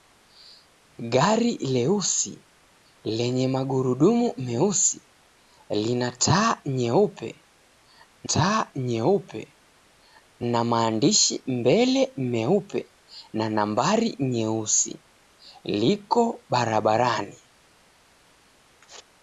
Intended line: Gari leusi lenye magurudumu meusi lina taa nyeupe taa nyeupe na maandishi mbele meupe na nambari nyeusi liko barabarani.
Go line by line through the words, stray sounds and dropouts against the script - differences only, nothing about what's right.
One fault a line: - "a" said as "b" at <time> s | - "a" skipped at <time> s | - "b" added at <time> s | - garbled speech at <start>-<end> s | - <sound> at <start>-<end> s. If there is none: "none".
none